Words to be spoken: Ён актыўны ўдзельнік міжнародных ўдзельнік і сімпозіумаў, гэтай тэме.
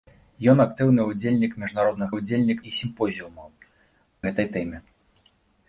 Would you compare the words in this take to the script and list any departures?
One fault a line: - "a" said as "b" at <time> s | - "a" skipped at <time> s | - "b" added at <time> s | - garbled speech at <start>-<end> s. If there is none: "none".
none